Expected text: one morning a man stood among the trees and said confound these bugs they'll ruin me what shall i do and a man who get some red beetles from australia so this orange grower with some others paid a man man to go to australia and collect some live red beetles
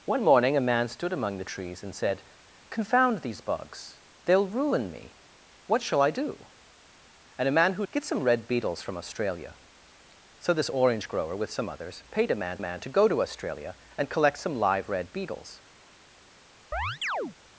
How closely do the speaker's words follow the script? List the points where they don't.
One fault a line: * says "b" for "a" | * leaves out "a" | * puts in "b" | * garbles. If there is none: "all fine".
all fine